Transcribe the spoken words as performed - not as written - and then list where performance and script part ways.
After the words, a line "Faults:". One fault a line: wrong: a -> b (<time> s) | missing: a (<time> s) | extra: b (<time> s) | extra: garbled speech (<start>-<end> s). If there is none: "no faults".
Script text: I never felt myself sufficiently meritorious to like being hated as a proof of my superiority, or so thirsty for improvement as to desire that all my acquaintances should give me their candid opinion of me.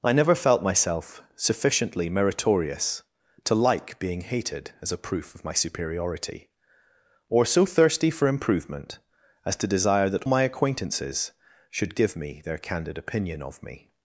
I never felt myself sufficiently meritorious to like being hated as a proof of my superiority, or so thirsty for improvement as to desire that my acquaintances should give me their candid opinion of me.
Faults:
missing: all (10.2 s)